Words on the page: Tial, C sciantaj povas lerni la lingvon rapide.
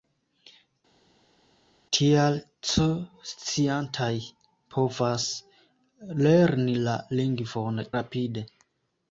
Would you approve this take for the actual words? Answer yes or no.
yes